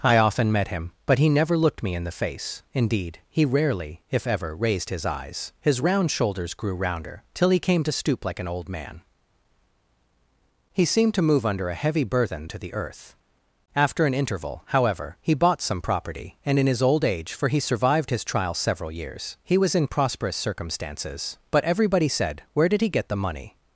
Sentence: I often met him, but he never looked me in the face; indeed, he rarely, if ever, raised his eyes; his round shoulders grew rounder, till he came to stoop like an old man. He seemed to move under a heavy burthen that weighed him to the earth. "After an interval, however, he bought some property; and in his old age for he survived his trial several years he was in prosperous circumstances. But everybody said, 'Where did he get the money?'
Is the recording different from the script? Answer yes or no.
yes